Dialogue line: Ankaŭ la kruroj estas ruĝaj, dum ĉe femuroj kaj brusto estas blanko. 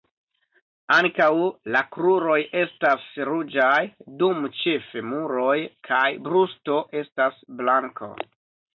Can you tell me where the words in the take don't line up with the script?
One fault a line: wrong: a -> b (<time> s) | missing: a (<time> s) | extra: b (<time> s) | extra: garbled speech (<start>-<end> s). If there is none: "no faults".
no faults